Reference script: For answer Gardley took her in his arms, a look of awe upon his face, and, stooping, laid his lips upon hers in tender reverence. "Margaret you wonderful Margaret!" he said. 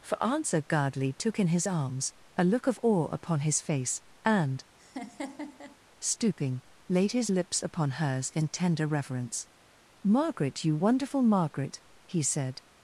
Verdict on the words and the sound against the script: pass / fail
fail